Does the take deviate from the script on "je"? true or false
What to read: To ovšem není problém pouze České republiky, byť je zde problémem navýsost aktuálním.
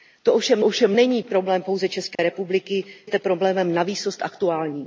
true